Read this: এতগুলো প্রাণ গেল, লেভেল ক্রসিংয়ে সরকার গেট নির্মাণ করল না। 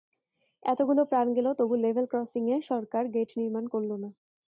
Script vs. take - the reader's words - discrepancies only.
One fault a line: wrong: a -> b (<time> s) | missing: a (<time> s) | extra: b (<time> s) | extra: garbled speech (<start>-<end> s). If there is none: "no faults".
extra: তবু (1.6 s)